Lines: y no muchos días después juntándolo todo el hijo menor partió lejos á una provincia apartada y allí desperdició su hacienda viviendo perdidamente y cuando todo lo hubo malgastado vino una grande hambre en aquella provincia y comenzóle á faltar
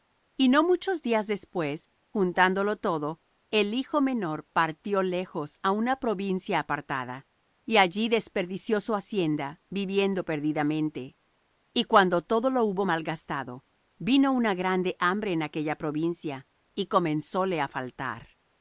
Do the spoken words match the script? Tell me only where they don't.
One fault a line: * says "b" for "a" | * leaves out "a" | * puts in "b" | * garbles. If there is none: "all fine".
all fine